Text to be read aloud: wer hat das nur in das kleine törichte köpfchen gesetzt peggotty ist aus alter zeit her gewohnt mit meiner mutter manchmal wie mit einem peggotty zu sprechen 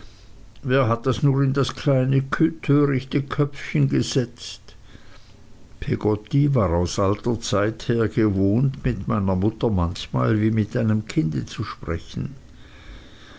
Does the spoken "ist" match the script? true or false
false